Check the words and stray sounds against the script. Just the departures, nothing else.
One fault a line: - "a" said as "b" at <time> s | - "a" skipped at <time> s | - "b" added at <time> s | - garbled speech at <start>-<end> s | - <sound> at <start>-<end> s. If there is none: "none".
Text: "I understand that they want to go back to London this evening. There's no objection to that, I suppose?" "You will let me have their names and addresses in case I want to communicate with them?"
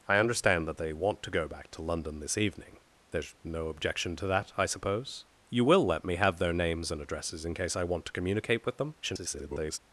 - garbled speech at 9.0-9.8 s